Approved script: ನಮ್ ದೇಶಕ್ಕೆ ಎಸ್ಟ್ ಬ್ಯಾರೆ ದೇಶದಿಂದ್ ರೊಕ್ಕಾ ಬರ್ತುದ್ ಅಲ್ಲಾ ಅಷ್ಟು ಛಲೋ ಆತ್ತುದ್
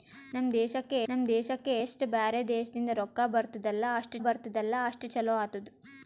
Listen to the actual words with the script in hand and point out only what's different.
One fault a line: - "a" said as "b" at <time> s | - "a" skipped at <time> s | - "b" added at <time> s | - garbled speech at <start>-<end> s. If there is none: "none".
- "ನಮ್ ದೇಶಕ್ಕೆ" added at 1.1 s
- "ಬರ್ತುದ್ ಅಲ್ಲಾ ಅಷ್ಟು" added at 4.2 s